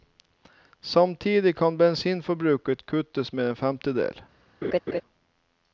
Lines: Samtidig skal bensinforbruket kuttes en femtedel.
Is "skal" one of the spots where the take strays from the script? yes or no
yes